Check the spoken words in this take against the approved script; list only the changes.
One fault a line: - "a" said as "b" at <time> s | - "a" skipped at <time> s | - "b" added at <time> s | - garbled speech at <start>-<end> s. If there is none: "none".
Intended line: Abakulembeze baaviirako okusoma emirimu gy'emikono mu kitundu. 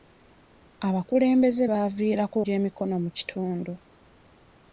- "okusoma emirimu" skipped at 2.4 s